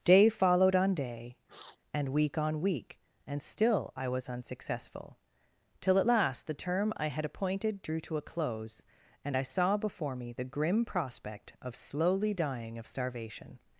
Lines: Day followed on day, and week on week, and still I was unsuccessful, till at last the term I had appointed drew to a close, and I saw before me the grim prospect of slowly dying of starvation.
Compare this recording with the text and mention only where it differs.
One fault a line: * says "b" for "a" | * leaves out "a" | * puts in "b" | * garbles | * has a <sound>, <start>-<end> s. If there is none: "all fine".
* has a sniff, 1.5-1.8 s